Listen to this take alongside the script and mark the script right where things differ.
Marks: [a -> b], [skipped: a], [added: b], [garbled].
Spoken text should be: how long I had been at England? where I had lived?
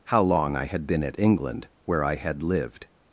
how long I had been at England? where I had lived?